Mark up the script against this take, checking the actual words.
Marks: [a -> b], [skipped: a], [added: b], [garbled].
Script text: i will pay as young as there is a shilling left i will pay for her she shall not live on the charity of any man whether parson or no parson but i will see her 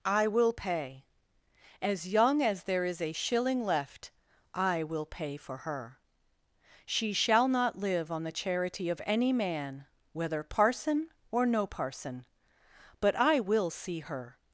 i will pay as young as there is a shilling left i will pay for her she shall not live on the charity of any man whether parson or no parson but i will see her